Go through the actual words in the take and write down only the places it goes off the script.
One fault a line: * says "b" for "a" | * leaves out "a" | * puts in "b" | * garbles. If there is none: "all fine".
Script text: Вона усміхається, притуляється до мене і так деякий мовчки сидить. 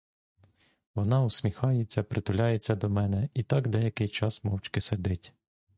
* puts in "час"